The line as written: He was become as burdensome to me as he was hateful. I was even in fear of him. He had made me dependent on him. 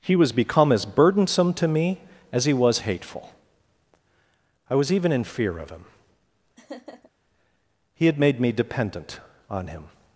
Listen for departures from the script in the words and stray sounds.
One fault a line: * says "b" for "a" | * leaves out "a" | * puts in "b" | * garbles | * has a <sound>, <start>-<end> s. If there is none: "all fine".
* has a laugh, 6.6-7.1 s